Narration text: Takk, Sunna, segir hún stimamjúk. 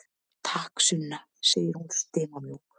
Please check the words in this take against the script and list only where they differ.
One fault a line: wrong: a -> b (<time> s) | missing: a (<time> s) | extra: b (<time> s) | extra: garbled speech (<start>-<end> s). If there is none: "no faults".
no faults